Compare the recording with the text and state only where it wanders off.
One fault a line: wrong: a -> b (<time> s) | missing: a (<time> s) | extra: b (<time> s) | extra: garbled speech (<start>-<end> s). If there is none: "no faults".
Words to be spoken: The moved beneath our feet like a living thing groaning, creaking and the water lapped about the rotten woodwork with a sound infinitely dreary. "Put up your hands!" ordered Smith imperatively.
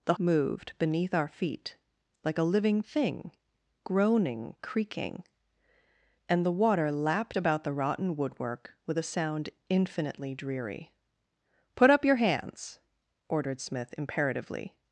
no faults